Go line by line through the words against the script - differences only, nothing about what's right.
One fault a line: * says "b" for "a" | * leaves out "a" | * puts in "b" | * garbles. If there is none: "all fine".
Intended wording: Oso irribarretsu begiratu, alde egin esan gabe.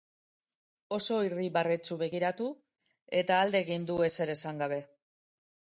* puts in "eta"
* puts in "du ezer"